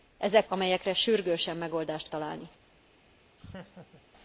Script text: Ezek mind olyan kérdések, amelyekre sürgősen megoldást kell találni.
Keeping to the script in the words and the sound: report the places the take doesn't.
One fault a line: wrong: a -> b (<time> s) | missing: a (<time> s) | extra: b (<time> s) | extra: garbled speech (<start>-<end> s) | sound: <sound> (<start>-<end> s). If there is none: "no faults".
missing: mind olyan kérdések (0.5 s)
missing: kell (2.1 s)
sound: laugh (3.4-4.0 s)